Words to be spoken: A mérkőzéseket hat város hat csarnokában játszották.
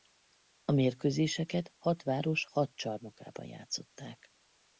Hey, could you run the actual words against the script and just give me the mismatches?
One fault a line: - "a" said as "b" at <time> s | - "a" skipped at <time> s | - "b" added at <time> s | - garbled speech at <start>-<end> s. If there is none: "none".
none